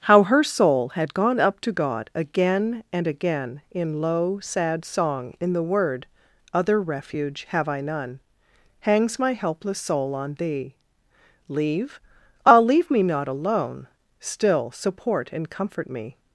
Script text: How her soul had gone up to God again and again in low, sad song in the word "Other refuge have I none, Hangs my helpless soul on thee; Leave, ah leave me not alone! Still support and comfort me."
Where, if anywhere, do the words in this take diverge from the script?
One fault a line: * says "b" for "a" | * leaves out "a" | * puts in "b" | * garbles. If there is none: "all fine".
all fine